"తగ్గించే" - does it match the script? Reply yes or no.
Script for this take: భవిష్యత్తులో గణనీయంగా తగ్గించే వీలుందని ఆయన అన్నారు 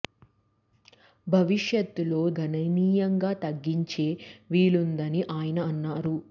yes